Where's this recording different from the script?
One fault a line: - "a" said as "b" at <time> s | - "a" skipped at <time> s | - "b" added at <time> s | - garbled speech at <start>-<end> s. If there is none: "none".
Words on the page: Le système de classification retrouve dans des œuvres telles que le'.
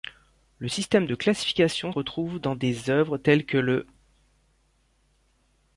none